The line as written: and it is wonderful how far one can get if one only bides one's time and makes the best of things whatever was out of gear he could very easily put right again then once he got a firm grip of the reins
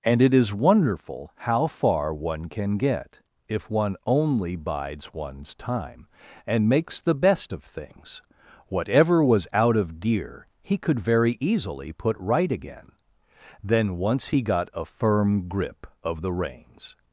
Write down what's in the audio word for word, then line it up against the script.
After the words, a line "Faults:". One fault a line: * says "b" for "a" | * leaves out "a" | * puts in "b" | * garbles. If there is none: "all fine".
and it is wonderful how far one can get if one only bides one's time and makes the best of things whatever was out of gear he could very easily put right again then once he got a firm grip of the reins
Faults:
all fine